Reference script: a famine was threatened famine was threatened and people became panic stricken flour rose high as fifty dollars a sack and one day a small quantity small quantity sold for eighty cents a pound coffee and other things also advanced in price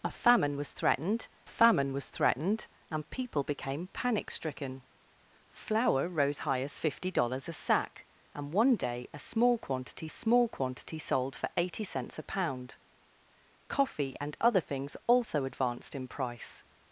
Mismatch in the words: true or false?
false